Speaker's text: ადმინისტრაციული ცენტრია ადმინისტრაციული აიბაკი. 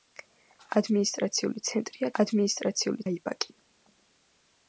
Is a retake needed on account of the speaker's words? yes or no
no